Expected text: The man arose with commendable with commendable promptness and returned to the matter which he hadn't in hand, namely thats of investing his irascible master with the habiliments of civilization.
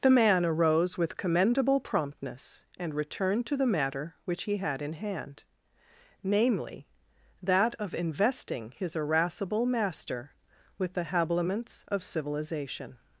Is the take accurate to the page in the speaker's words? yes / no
no